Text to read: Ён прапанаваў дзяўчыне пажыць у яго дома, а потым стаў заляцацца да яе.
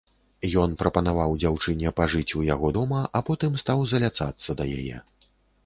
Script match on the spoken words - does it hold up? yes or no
yes